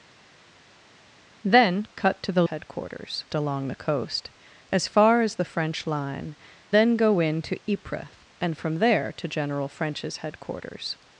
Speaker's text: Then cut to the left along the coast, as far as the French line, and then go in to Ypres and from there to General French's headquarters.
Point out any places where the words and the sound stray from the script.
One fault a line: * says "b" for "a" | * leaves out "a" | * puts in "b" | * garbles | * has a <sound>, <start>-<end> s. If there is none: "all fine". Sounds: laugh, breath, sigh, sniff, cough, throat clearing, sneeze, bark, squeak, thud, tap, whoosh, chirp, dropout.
* says "headquarters" for "left"
* leaves out "and"